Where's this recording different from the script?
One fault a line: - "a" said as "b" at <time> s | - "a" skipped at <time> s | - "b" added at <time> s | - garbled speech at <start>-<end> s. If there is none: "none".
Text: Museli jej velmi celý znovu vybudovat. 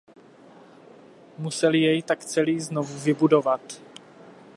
- "velmi" said as "tak" at 2.0 s